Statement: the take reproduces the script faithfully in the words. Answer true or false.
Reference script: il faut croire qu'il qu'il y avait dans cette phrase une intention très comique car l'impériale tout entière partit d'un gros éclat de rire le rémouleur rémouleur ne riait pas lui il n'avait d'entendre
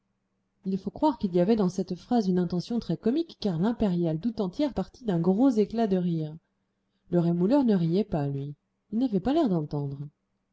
false